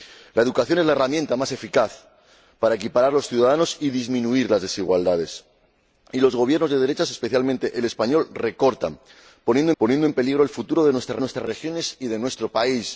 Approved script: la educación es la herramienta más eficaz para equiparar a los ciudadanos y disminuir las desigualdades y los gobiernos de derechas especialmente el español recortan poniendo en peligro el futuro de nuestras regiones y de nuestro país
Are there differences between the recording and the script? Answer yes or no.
yes